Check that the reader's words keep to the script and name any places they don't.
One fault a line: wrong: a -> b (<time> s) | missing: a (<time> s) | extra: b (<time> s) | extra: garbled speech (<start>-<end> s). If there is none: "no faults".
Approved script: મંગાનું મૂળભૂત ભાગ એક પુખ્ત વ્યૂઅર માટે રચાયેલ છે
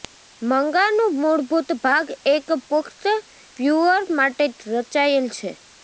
no faults